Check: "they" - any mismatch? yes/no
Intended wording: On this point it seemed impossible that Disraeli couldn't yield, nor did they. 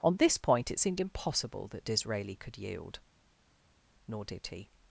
yes